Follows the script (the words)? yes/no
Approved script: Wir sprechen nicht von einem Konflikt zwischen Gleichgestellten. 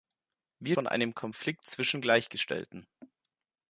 no